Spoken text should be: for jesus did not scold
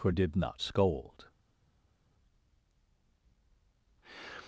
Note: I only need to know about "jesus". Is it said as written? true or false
false